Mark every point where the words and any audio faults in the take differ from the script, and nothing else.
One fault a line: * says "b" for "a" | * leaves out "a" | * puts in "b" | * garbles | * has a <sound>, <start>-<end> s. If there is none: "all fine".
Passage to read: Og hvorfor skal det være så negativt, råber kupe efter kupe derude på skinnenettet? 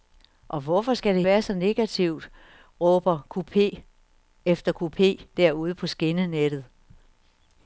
all fine